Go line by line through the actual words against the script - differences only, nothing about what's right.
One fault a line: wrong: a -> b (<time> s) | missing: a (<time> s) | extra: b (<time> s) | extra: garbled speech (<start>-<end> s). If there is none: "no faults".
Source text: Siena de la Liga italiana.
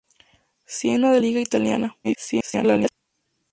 missing: la (1.2 s)
extra: garbled speech (2.0-2.9 s)